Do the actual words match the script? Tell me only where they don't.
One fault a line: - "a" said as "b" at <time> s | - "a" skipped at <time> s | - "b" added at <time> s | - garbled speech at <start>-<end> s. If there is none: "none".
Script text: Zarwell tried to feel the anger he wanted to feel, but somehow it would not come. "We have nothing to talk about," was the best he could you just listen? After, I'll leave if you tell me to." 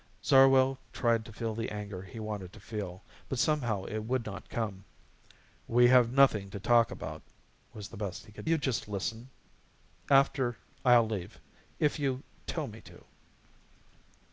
none